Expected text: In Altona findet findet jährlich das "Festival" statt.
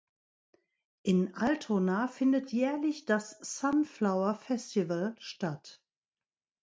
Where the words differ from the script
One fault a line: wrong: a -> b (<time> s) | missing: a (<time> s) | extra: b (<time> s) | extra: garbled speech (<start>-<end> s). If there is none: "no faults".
missing: findet (2.5 s)
extra: Sunflower (3.3 s)